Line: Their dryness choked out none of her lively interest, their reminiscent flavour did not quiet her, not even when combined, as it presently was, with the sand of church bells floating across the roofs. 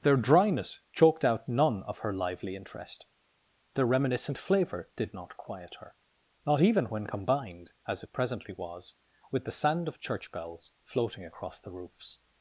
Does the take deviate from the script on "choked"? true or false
false